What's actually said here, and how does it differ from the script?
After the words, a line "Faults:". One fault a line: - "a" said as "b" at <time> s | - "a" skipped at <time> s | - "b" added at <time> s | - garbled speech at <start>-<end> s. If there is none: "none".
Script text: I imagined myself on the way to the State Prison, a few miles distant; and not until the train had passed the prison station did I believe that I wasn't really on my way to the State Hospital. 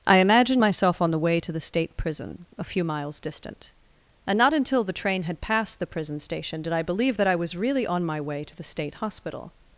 I imagined myself on the way to the State Prison, a few miles distant; and not until the train had passed the prison station did I believe that I was really on my way to the State Hospital.
Faults:
- "wasn't" said as "was" at 7.3 s